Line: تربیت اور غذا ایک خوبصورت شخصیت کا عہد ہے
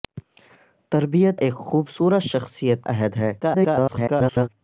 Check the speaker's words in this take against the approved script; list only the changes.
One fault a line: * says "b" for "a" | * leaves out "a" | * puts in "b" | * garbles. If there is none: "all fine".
* leaves out "اور غذا"
* leaves out "کا"
* garbles